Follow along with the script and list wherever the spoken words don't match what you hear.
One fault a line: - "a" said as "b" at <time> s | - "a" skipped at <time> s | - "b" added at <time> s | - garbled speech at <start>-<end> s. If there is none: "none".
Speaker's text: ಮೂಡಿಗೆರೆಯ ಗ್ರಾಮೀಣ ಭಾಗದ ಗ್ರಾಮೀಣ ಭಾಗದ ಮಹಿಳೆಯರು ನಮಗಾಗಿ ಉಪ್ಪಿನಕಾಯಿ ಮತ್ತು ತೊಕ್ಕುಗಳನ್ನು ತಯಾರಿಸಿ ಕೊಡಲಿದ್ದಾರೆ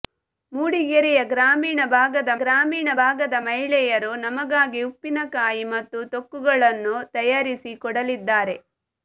none